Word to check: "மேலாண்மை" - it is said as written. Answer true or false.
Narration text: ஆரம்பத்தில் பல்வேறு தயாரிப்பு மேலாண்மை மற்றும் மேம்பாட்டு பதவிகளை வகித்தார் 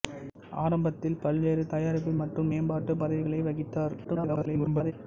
false